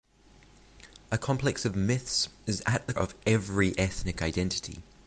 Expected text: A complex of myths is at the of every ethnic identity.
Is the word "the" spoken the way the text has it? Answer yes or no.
yes